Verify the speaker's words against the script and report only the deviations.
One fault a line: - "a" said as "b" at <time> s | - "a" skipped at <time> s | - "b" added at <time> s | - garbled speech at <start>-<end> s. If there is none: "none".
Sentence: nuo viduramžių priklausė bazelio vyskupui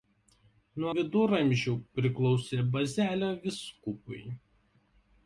none